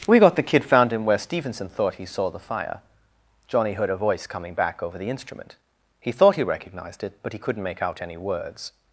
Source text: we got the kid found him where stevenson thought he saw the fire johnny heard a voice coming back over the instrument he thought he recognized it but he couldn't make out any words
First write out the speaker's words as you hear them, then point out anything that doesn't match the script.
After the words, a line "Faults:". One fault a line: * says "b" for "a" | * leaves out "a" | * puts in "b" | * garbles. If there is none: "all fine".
we got the kid found him where stevenson thought he saw the fire johnny heard a voice coming back over the instrument he thought he recognized it but he couldn't make out any words
Faults:
all fine